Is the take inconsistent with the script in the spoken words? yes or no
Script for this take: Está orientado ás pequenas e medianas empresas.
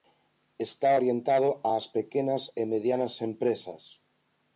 no